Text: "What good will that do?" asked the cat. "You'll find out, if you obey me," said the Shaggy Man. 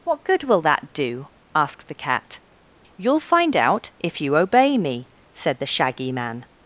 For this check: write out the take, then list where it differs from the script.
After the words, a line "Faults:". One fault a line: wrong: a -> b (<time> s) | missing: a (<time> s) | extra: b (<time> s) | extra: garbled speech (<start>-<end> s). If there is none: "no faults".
"What good will that do?" asked the cat. "You'll find out, if you obey me," said the Shaggy Man.
Faults:
no faults